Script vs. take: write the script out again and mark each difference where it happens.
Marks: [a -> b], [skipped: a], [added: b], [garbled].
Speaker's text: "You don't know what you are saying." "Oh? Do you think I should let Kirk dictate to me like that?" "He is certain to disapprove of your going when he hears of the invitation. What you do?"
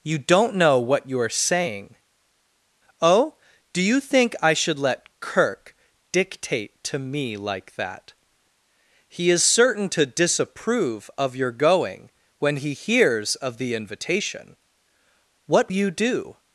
"You don't know what you are saying." "Oh? Do you think I should let Kirk dictate to me like that?" "He is certain to disapprove of your going when he hears of the invitation. What you do?"